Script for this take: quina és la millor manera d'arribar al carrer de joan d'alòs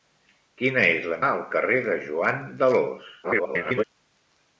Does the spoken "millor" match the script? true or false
false